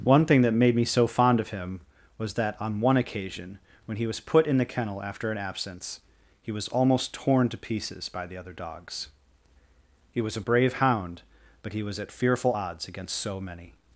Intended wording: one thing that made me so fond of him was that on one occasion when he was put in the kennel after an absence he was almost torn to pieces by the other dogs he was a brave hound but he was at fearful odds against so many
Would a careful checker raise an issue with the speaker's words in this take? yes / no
no